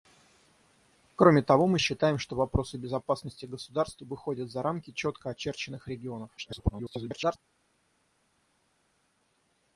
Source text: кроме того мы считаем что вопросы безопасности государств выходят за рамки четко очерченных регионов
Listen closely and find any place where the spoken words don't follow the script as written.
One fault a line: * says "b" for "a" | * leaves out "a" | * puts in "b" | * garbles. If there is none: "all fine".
* garbles